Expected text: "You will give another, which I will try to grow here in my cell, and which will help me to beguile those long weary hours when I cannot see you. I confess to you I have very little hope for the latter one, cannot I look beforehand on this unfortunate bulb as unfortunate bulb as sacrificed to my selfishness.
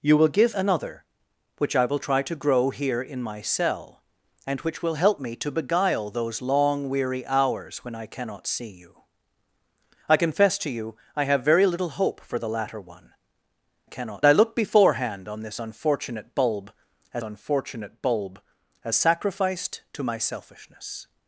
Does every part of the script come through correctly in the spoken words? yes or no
yes